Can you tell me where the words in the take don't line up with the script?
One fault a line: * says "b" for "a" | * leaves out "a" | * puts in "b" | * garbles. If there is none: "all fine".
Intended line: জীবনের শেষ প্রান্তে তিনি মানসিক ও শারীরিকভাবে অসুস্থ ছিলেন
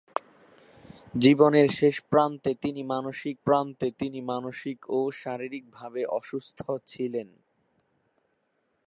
* puts in "প্রান্তে তিনি মানসিক"